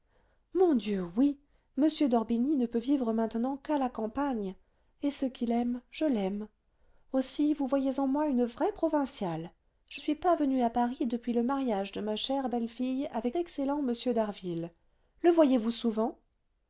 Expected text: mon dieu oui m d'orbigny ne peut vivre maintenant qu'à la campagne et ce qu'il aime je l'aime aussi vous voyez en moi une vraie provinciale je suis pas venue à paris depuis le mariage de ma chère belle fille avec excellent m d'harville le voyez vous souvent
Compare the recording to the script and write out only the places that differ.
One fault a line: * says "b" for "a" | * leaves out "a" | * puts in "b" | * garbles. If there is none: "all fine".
all fine